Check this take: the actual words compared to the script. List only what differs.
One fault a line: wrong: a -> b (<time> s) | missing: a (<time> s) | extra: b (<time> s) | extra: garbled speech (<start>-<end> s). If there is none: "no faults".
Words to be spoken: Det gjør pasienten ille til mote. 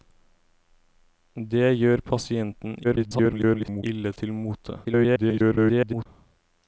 extra: garbled speech (2.8-3.8 s)
extra: garbled speech (4.8-6.1 s)